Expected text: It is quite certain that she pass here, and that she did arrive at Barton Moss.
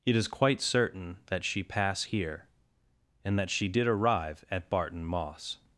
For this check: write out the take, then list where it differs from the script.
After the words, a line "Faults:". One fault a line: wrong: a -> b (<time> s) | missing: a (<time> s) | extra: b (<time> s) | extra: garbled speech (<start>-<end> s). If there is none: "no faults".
It is quite certain that she pass here, and that she did arrive at Barton Moss.
Faults:
no faults